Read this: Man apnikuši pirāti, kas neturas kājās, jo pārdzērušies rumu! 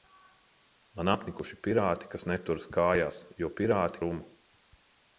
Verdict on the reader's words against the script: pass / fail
fail